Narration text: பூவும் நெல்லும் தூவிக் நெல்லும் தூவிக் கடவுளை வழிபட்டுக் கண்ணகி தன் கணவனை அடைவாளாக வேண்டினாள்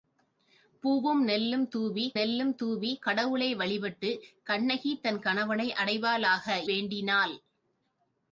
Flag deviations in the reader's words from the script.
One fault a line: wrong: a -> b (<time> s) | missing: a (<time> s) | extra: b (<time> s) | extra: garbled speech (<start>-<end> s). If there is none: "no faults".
no faults